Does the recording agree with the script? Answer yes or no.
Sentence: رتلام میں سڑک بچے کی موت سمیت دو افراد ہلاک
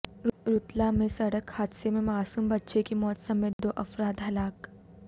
no